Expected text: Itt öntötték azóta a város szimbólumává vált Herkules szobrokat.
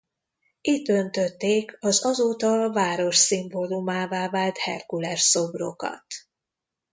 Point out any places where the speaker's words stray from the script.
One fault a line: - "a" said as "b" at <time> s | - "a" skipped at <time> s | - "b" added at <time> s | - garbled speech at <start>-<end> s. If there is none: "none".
- "az" added at 1.8 s